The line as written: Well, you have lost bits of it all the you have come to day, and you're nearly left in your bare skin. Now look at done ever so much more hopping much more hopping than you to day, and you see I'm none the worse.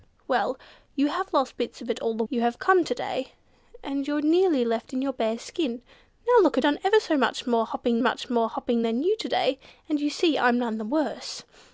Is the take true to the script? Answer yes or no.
yes